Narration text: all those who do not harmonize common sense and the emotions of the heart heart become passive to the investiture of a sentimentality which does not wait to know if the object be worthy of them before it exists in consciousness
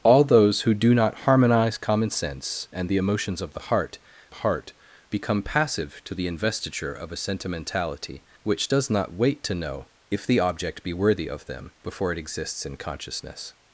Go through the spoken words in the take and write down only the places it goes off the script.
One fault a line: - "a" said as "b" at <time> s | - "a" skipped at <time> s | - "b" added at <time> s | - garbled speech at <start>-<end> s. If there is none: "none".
none